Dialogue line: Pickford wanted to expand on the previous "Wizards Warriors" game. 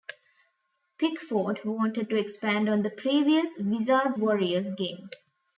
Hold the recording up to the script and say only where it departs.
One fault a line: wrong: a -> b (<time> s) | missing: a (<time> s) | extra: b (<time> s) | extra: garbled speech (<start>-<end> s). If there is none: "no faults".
no faults